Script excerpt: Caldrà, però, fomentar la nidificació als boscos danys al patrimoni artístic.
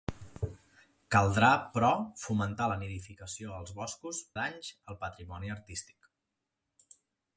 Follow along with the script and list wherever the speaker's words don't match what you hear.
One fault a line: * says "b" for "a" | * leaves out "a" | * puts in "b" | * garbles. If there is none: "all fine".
all fine